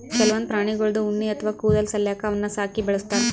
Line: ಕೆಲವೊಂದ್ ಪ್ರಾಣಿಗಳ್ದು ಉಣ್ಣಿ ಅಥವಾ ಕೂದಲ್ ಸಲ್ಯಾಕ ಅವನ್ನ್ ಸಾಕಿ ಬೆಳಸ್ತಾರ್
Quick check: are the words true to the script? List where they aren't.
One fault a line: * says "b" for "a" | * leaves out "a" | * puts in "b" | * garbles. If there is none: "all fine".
all fine